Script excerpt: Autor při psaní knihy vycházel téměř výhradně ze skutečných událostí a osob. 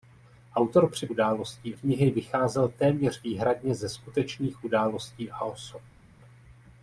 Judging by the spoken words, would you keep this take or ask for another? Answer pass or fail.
fail